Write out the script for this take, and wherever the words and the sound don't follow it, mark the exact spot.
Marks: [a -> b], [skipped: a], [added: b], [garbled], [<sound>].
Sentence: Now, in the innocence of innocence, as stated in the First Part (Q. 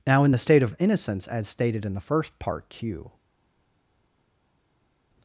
Now, in the [innocence -> state] of innocence, as stated in the First Part (Q.